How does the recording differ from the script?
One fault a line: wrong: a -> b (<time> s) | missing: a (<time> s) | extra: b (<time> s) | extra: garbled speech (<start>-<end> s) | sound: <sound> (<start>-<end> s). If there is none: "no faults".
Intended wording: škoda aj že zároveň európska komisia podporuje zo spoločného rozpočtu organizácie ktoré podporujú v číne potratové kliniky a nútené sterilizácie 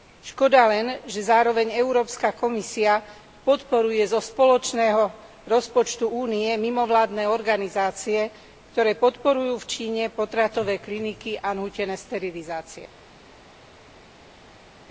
wrong: aj -> len (0.7 s)
extra: únie mimovládne (6.1 s)